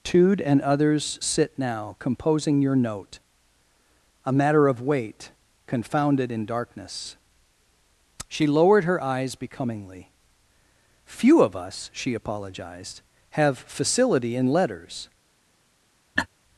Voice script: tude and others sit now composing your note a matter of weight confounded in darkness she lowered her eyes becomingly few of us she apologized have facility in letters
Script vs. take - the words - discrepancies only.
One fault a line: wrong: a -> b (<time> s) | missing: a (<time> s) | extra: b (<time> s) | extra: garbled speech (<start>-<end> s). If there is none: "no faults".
no faults